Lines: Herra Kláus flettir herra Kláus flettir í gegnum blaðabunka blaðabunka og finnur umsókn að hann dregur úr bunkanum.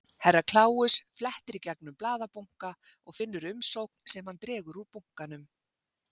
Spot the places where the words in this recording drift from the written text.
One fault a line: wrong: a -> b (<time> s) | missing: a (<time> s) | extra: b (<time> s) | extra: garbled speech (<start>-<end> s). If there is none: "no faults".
missing: herra Kláus flettir (1.6 s)
missing: blaðabunka (2.7 s)
wrong: að -> sem (4.1 s)